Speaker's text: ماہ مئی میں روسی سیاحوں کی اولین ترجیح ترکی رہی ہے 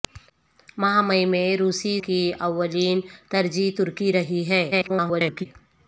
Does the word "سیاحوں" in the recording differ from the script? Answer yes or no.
yes